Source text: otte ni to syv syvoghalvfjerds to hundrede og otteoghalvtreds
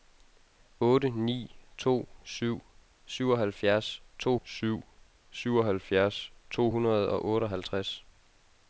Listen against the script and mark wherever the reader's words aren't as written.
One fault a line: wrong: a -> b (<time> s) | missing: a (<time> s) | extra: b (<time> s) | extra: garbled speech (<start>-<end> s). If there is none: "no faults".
extra: syv syvoghalvfjerds to (4.4 s)